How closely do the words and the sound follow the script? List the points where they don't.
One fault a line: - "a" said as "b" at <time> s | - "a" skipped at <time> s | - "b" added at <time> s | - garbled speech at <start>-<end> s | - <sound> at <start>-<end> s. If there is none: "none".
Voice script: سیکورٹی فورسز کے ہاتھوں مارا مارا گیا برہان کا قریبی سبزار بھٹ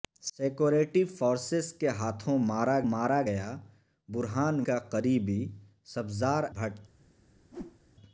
- whoosh at 7.5-7.8 s